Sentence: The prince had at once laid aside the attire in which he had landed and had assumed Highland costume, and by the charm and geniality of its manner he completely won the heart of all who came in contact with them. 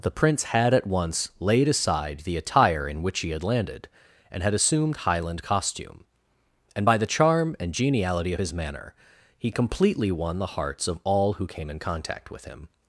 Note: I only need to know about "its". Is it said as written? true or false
false